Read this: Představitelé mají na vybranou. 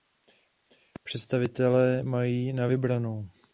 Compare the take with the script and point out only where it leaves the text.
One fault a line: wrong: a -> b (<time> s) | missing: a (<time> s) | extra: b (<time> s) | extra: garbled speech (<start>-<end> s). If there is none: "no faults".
no faults